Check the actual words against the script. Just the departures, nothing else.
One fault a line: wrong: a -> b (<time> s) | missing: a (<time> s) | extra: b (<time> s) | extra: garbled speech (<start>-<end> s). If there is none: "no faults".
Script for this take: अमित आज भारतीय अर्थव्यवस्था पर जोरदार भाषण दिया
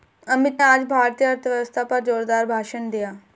no faults